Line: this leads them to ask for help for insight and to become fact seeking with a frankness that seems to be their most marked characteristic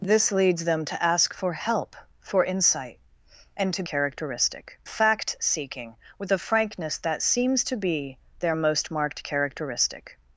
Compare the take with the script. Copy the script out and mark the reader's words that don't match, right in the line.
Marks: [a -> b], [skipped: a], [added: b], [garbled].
this leads them to ask for help for insight and to [become -> characteristic] fact seeking with a frankness that seems to be their most marked characteristic